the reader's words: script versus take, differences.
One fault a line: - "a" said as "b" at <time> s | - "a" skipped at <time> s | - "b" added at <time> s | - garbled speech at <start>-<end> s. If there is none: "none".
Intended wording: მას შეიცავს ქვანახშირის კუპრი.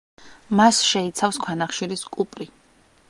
none